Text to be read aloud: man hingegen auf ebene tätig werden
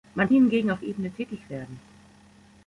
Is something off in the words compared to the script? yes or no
no